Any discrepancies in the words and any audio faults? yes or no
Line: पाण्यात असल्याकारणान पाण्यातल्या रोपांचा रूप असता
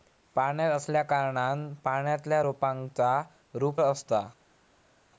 no